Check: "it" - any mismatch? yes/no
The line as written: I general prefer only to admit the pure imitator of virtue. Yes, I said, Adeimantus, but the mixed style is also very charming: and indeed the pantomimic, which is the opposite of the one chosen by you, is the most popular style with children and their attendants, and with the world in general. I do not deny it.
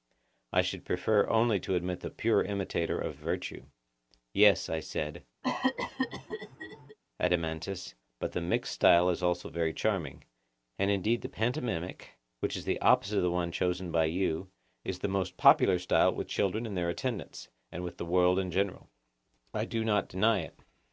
no